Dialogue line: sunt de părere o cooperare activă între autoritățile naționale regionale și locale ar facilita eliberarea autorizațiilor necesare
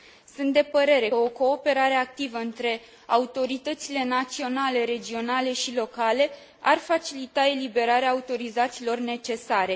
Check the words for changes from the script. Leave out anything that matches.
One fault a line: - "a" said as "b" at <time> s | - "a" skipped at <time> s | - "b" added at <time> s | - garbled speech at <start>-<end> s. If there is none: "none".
none